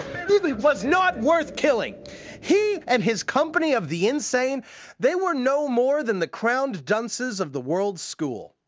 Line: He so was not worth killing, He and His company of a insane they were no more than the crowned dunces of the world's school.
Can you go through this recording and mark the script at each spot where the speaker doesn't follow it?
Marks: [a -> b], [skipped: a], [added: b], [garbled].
He [skipped: so] was not worth killing, He and His company of [a -> the] insane they were no more than the crowned dunces of the world's school.